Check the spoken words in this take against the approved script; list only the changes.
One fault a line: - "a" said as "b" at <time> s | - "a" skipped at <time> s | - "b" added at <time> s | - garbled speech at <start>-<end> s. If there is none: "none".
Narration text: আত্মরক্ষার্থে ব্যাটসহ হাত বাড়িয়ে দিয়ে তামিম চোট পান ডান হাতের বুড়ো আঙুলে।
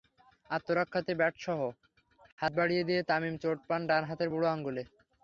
none